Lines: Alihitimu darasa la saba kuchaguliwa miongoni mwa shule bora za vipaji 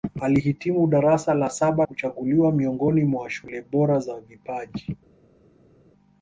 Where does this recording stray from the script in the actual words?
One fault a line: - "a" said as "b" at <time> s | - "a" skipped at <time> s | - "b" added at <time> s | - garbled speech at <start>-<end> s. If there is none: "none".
none